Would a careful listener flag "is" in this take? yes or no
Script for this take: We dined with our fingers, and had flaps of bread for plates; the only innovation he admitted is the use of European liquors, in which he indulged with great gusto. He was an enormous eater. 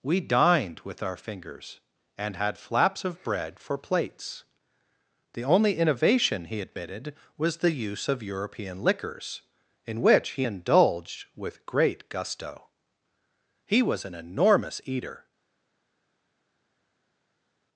yes